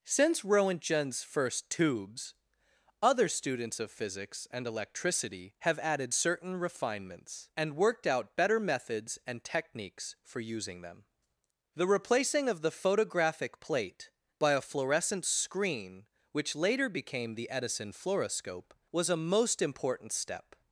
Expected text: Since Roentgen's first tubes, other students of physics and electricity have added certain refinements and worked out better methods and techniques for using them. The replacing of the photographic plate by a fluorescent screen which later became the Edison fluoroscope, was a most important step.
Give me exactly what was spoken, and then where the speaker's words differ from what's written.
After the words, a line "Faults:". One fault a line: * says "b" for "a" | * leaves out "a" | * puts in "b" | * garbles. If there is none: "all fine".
Since Roentgen's first tubes, other students of physics and electricity have added certain refinements and worked out better methods and techniques for using them. The replacing of the photographic plate by a fluorescent screen which later became the Edison fluoroscope, was a most important step.
Faults:
all fine